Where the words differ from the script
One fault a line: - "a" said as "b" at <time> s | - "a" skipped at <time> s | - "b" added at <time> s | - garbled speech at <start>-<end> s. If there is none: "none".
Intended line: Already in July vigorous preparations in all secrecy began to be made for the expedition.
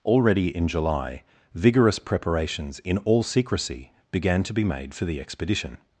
none